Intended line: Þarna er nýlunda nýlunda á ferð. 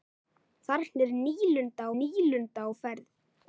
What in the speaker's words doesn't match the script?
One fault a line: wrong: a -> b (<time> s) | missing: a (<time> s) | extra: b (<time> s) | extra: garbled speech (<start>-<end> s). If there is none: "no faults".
no faults